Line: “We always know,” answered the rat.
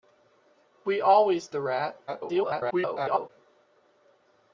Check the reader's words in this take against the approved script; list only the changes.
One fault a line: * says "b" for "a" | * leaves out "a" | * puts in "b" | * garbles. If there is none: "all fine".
* leaves out "know answered"
* garbles